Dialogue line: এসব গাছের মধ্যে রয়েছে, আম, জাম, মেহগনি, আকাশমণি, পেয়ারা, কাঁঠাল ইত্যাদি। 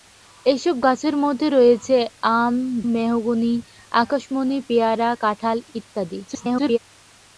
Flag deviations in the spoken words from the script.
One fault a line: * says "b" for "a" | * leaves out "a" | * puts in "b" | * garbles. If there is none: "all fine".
* leaves out "জাম"
* garbles